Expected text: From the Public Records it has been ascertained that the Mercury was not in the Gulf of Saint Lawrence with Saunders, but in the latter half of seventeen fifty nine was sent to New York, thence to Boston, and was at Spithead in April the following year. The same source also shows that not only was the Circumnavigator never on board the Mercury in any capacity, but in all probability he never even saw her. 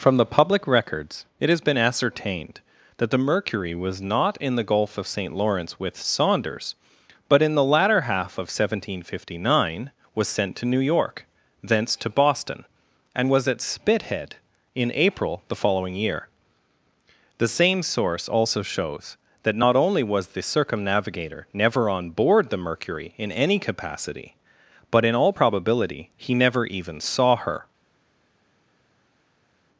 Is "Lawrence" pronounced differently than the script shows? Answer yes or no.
no